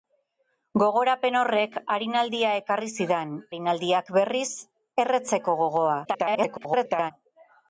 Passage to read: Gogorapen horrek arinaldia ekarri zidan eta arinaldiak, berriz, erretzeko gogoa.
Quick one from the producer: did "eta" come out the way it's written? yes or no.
no